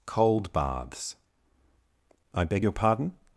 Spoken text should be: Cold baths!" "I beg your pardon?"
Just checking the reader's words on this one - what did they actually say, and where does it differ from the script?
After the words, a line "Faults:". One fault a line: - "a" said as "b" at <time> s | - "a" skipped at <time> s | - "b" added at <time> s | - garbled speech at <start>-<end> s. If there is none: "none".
Cold baths!" "I beg your pardon?"
Faults:
none